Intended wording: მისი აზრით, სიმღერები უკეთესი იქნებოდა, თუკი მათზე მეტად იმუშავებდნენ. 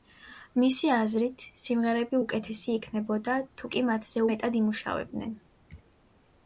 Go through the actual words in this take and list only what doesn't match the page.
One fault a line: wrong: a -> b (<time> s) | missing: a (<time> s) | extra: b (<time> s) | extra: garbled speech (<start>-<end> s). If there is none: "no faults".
no faults